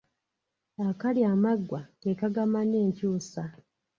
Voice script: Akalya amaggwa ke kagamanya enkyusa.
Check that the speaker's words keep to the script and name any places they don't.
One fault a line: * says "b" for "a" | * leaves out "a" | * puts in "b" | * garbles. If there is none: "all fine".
all fine